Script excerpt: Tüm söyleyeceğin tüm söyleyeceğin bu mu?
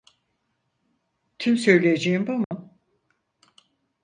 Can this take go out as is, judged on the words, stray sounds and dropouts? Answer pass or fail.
fail